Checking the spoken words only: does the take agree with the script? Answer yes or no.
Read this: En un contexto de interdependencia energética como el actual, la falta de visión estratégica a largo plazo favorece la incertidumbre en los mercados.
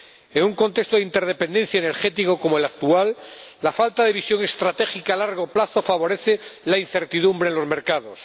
yes